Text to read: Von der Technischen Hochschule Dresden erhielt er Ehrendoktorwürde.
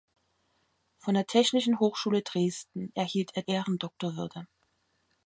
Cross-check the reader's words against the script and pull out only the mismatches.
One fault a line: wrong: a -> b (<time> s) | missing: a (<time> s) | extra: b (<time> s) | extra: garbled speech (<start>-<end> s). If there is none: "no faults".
no faults